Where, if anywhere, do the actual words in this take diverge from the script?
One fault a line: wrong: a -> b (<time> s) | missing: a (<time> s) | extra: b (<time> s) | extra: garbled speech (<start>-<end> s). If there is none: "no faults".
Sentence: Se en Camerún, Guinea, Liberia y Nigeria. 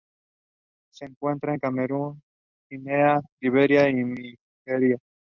extra: encuentra (1.1 s)